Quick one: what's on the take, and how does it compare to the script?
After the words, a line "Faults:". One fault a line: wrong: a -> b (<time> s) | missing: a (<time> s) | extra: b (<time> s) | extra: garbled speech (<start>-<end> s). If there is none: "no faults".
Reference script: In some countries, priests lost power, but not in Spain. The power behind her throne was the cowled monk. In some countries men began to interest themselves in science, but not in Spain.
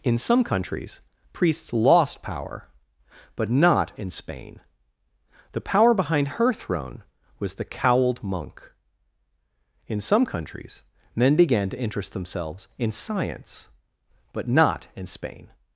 In some countries, priests lost power, but not in Spain. The power behind her throne was the cowled monk. In some countries men began to interest themselves in science, but not in Spain.
Faults:
no faults